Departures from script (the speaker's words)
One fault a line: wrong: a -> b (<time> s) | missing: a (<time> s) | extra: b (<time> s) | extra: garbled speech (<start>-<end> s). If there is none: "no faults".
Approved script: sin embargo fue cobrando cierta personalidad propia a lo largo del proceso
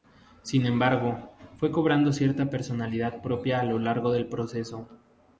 no faults